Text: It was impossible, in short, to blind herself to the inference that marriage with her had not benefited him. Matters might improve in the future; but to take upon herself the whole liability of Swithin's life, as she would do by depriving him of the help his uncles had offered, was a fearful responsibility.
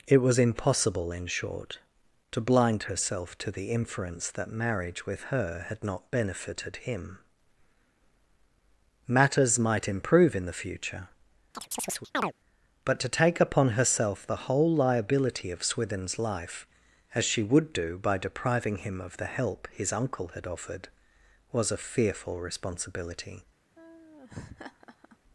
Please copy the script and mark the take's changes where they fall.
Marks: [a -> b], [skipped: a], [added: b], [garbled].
It was impossible, in short, to blind herself to the inference that marriage with her had not benefited him. Matters might improve in the future; but to take upon herself the whole liability of Swithin's life, as she would do by depriving him of the help his [uncles -> uncle] had offered, was a fearful responsibility.